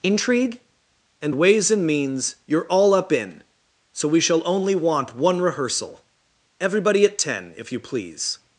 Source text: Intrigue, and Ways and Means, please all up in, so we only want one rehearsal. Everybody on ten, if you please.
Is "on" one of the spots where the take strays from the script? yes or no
yes